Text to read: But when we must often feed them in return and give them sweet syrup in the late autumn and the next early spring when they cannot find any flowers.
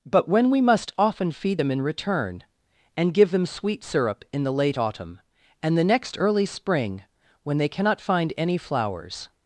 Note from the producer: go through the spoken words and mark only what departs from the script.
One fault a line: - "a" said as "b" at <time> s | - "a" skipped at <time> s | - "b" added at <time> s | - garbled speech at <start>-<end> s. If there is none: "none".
none